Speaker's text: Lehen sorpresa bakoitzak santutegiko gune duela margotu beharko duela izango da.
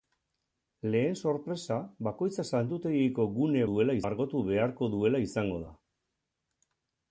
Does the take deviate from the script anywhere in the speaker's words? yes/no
no